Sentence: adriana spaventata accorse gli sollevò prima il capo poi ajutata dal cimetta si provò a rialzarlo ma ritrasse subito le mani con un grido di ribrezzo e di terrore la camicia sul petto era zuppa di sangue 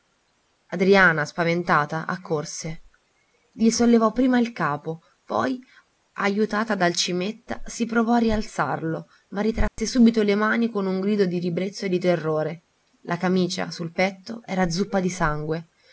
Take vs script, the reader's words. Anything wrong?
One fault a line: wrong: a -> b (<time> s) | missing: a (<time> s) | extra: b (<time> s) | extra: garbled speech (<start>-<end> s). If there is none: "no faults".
no faults